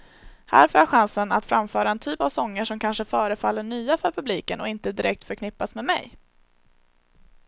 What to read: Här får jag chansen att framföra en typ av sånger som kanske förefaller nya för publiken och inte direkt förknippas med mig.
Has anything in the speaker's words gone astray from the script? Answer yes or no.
no